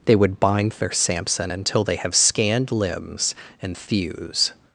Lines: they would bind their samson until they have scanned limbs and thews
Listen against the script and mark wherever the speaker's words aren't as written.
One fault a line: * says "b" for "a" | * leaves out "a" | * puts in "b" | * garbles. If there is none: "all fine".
all fine